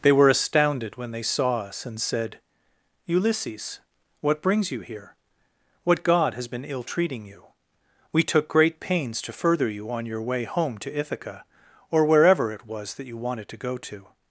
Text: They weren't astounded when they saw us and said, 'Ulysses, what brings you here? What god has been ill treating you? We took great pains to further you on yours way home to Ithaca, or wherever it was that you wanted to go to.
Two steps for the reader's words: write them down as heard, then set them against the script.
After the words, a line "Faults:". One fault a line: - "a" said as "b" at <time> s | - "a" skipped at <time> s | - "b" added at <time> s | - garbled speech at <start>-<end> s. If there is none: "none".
They were astounded when they saw us and said, 'Ulysses, what brings you here? What god has been ill treating you? We took great pains to further you on your way home to Ithaca, or wherever it was that you wanted to go to.
Faults:
- "weren't" said as "were" at 0.1 s
- "yours" said as "your" at 10.1 s